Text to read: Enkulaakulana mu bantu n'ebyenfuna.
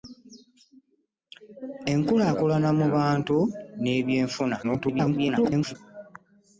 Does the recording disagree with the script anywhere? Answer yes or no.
yes